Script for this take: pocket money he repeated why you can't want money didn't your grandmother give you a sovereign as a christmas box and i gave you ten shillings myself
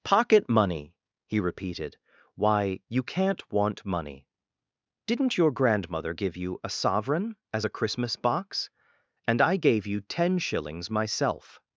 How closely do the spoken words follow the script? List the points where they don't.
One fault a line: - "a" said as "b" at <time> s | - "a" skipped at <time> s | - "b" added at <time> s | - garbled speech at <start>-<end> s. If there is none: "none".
none